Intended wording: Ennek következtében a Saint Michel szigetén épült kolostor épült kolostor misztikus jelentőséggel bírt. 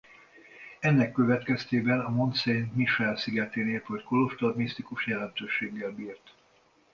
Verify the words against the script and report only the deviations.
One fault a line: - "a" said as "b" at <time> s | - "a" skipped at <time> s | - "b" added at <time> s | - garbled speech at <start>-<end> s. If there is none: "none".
- "Mont" added at 2.1 s
- "épült kolostor" skipped at 4.5 s